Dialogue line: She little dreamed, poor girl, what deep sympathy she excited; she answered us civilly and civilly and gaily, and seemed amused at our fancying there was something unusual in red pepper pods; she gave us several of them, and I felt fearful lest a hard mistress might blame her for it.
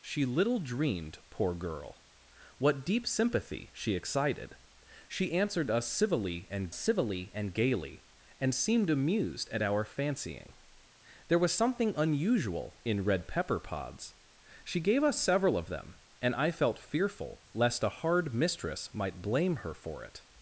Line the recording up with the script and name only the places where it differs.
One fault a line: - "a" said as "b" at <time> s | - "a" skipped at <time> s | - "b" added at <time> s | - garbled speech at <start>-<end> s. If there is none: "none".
none